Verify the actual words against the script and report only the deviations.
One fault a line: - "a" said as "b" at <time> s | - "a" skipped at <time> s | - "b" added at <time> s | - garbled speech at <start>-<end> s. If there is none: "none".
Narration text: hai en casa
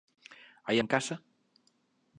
none